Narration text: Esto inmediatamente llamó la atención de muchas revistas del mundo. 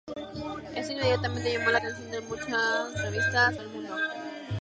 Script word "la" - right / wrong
right